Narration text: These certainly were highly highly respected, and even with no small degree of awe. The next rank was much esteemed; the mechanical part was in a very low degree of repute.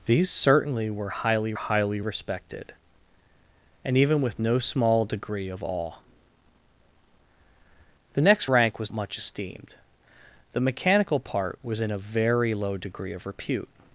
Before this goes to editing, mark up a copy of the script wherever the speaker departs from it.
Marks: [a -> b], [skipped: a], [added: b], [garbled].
These certainly were highly highly respected, and even with no small degree of awe. The next rank was much esteemed; the mechanical part was in a very low degree of repute.